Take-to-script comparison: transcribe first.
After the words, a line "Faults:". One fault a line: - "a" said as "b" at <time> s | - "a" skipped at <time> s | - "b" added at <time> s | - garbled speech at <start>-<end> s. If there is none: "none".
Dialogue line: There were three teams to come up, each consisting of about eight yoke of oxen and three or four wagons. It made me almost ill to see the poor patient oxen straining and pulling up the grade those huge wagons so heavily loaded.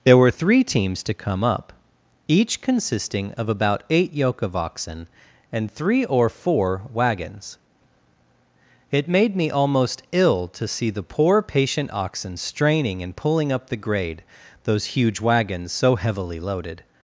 There were three teams to come up, each consisting of about eight yoke of oxen and three or four wagons. It made me almost ill to see the poor patient oxen straining and pulling up the grade those huge wagons so heavily loaded.
Faults:
none